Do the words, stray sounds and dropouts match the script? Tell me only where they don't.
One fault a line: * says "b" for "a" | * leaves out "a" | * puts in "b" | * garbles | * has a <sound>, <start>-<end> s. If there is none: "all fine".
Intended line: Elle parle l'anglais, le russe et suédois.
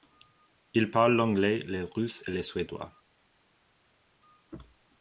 * says "Il" for "Elle"
* puts in "le"